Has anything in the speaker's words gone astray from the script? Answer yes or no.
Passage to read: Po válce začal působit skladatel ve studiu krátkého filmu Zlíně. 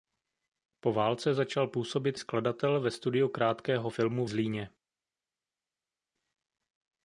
no